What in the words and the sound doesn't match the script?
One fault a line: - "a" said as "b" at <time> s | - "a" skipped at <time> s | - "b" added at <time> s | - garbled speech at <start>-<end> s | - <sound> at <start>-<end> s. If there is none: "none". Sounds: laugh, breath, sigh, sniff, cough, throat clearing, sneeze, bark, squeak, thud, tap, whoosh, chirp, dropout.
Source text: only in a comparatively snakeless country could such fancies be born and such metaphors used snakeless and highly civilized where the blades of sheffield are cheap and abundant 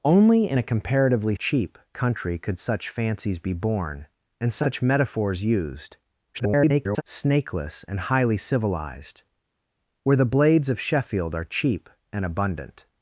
- "snakeless" said as "cheap" at 1.3 s
- garbled speech at 6.3-7.0 s